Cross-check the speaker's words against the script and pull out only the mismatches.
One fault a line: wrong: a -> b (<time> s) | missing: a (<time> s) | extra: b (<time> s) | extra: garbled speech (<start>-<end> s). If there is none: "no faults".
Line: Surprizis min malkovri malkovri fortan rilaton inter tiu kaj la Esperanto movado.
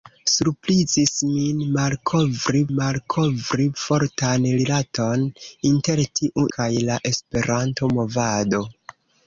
no faults